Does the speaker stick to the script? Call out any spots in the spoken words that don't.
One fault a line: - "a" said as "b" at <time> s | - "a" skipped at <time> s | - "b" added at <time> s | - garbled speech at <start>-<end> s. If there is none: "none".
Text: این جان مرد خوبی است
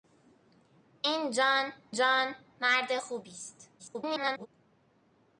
- "جان" added at 1.9 s
- garbled speech at 3.8-4.5 s